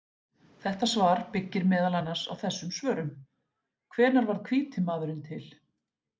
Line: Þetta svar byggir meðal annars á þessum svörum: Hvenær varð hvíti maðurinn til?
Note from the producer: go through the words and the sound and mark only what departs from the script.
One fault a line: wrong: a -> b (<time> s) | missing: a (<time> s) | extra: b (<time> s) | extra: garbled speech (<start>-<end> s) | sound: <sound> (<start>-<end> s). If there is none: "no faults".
no faults